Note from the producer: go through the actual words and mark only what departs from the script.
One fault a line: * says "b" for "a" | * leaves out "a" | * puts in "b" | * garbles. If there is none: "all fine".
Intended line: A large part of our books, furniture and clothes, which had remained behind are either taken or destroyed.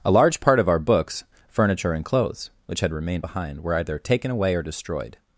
* says "were" for "are"
* puts in "away"